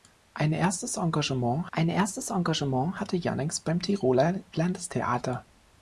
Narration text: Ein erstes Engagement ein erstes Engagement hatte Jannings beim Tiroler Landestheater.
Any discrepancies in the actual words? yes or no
no